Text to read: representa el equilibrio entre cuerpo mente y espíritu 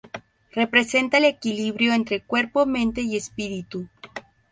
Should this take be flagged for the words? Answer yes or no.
no